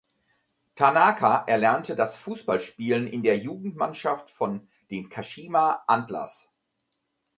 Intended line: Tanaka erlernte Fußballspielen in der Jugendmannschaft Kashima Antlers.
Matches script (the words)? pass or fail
fail